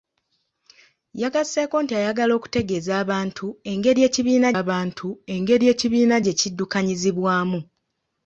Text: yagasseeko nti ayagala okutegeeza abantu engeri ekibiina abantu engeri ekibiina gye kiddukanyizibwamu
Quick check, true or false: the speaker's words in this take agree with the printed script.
true